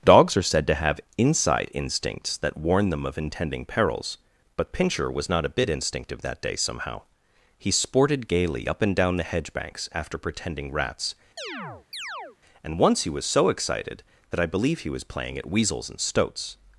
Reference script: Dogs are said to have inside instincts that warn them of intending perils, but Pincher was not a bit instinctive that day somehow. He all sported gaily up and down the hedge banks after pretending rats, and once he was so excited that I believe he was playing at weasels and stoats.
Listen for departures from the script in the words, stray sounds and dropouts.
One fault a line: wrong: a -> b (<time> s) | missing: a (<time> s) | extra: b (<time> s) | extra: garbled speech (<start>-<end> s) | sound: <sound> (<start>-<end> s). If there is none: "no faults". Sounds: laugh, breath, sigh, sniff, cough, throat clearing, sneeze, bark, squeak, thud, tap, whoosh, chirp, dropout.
missing: all (7.7 s)
sound: chirp (11.4-12.4 s)